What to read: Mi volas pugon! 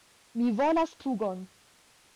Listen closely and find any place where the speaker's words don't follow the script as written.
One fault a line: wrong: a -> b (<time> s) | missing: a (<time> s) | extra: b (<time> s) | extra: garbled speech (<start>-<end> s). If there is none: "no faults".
no faults